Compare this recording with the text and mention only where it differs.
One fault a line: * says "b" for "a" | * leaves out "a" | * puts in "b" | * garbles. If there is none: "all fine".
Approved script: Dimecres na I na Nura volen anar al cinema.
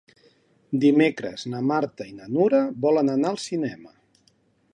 * puts in "Marta"